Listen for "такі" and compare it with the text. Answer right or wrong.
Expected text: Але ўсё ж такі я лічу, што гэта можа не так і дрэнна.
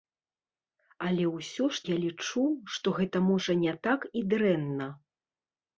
wrong